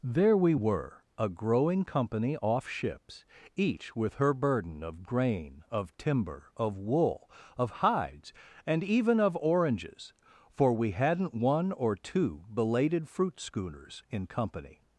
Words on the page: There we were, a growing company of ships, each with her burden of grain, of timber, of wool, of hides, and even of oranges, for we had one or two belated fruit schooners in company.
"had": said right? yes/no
no